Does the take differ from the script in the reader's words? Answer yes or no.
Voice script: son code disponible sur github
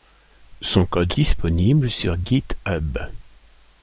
no